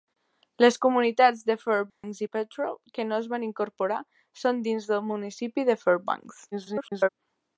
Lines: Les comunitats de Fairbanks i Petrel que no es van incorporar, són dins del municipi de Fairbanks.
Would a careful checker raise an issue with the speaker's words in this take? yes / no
yes